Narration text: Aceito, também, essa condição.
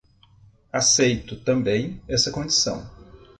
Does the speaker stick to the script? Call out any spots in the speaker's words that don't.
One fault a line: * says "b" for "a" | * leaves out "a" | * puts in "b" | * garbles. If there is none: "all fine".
all fine